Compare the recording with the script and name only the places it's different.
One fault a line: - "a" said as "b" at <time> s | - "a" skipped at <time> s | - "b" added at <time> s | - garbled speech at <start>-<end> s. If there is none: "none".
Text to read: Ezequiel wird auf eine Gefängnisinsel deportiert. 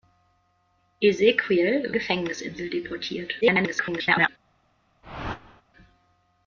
- "wird auf eine" skipped at 1.9 s
- garbled speech at 3.4-4.3 s